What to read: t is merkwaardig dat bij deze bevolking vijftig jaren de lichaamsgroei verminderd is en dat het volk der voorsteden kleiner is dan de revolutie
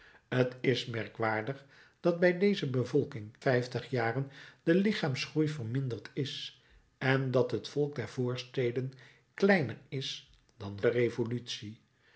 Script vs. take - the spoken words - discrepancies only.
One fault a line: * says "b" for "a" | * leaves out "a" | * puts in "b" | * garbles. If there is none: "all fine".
all fine